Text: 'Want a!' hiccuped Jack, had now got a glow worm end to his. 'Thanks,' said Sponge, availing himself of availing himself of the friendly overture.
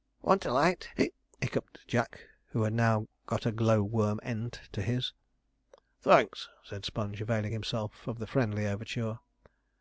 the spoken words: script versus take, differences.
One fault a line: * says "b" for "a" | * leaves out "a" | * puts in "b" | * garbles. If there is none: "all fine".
* puts in "light"
* puts in "who"
* leaves out "availing himself of"